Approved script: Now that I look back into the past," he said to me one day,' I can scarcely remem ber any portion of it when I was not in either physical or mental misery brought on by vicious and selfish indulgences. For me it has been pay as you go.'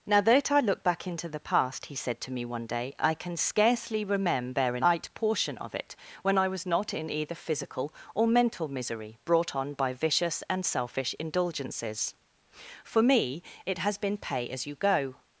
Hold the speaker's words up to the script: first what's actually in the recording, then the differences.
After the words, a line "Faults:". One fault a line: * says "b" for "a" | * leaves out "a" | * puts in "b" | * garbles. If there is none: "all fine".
Now that I look back into the past," he said to me one day,' I can scarcely remember a night portion of it when I was not in either physical or mental misery brought on by vicious and selfish indulgences. For me it has been pay as you go.'
Faults:
* says "remember a night" for "remem ber any"